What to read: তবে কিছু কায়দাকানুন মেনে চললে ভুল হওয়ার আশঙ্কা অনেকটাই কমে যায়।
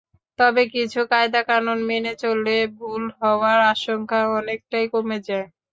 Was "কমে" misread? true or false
false